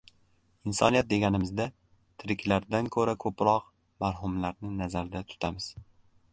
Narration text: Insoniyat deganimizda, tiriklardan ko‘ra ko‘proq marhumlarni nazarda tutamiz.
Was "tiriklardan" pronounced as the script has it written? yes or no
yes